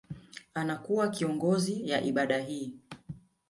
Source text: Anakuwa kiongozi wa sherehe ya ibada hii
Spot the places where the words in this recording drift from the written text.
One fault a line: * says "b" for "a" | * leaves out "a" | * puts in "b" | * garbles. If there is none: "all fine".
* leaves out "wa sherehe"